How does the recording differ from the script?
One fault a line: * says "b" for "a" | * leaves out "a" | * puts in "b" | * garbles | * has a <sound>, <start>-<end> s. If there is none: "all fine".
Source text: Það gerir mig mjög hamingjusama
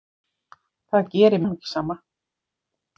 * leaves out "mig mjög"